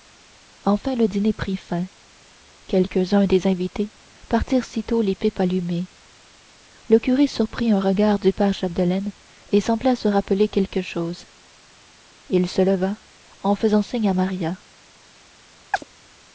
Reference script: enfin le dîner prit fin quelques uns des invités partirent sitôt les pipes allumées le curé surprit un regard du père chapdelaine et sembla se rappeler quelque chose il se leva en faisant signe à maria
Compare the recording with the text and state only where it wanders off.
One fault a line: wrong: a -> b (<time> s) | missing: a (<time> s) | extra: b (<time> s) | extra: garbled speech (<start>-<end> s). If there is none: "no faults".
no faults